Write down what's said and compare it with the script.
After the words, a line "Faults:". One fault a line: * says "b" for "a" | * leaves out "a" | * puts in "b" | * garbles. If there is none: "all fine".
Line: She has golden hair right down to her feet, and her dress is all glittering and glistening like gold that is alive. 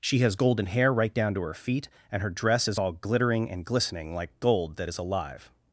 She has golden hair right down to her feet, and her dress is all glittering and glistening like gold that is alive.
Faults:
all fine